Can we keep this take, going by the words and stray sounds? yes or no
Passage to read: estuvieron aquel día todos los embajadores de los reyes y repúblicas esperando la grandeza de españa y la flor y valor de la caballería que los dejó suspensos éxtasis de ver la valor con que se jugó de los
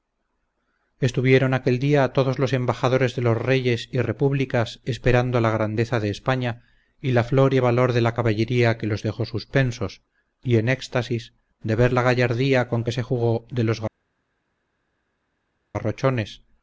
no